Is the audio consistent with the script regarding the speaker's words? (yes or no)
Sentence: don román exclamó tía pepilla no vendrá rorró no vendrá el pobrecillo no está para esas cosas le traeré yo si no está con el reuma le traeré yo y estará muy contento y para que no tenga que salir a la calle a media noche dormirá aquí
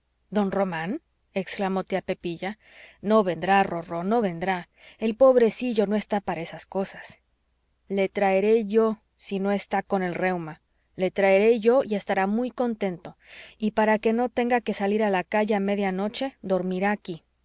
yes